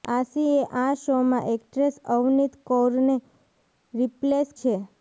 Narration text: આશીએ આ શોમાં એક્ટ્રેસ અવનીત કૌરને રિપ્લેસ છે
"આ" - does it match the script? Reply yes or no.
yes